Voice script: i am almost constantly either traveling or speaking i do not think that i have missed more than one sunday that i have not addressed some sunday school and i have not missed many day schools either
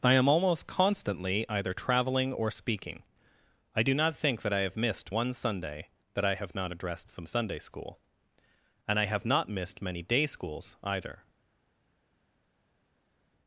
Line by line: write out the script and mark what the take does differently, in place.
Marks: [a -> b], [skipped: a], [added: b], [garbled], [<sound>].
i am almost constantly either traveling or speaking i do not think that i have missed [skipped: more than] one sunday that i have not addressed some sunday school and i have not missed many day schools either